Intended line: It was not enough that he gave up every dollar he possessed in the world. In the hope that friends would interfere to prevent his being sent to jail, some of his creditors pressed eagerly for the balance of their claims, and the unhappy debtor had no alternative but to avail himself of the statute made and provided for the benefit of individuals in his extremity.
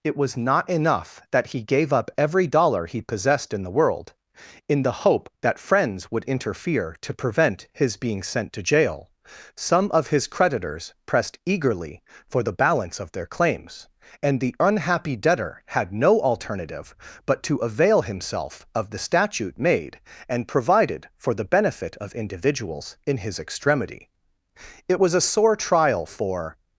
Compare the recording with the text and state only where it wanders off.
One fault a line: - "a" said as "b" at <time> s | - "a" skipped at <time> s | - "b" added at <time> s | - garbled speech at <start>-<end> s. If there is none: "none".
- "It was a sore trial for" added at 24.9 s